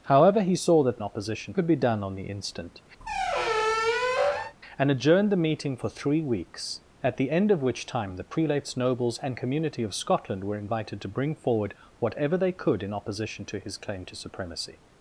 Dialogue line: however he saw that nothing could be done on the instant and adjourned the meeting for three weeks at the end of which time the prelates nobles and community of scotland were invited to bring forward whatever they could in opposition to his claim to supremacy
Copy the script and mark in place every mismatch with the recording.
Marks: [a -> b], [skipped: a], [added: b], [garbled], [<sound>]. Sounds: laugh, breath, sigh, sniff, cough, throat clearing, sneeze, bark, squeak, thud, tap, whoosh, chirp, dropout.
however he saw that [nothing -> opposition] could be done on the instant [squeak] and adjourned the meeting for three weeks at the end of which time the prelates nobles and community of scotland were invited to bring forward whatever they could in opposition to his claim to supremacy